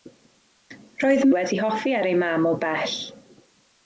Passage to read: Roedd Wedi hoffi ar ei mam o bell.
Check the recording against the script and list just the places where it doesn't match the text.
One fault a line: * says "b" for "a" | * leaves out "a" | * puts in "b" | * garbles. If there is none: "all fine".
all fine